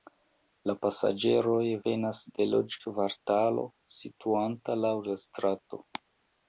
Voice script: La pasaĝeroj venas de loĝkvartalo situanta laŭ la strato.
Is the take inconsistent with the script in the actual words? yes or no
no